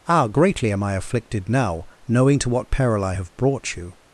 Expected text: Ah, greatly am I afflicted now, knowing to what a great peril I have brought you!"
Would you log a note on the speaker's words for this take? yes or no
yes